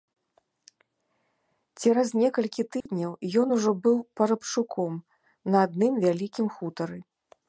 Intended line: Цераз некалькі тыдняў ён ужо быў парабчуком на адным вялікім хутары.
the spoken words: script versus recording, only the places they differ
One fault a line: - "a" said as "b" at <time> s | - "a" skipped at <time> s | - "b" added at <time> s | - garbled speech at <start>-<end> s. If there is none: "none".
none